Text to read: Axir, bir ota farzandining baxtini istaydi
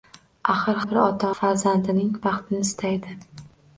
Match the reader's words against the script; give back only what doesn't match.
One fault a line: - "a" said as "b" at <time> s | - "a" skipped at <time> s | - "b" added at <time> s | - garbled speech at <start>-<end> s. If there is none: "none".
none